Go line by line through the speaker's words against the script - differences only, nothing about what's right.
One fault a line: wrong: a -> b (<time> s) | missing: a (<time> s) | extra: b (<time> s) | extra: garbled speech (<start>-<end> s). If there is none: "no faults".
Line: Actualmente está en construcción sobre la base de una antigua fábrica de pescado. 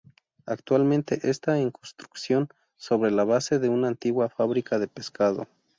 no faults